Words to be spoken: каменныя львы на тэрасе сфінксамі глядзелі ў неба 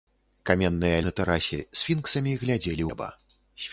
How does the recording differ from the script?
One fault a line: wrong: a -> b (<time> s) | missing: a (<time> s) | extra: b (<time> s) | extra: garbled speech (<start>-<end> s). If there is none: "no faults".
missing: львы (1.0 s)
missing: ў (2.8 s)